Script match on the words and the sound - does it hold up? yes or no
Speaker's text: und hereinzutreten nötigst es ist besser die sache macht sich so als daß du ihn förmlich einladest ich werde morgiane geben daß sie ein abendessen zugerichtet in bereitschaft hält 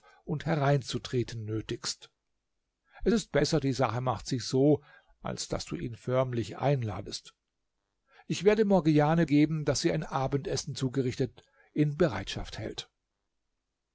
yes